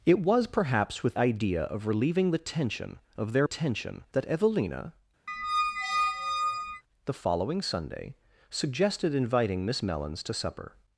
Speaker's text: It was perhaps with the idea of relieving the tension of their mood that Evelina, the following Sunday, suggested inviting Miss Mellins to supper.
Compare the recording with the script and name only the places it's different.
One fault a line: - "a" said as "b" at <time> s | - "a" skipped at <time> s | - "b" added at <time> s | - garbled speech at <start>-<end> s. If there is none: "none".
- "the" skipped at 1.2 s
- "mood" said as "tension" at 3.4 s